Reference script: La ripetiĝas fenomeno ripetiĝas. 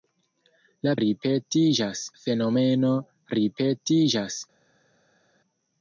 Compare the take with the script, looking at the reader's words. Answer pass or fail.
pass